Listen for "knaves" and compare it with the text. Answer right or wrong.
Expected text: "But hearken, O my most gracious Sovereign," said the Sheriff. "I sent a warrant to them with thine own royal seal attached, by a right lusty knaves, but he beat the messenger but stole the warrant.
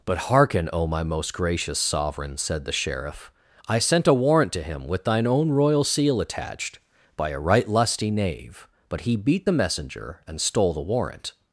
wrong